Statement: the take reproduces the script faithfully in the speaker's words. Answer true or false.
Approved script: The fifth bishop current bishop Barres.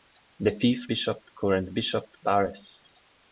true